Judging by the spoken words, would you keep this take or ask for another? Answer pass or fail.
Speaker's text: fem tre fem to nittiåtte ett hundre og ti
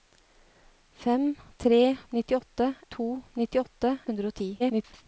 fail